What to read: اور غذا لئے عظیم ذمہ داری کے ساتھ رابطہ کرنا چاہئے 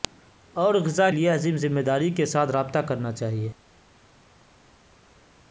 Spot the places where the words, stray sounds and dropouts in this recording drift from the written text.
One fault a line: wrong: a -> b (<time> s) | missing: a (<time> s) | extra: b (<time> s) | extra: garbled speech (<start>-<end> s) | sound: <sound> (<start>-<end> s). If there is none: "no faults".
no faults